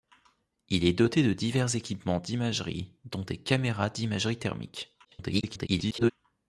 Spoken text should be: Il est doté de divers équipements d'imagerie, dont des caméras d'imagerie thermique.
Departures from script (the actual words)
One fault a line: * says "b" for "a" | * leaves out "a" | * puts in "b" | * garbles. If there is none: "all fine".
* garbles